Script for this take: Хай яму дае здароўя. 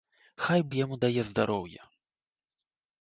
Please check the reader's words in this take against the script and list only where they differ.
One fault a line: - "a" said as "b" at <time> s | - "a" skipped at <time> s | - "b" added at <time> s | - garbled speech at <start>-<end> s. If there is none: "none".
none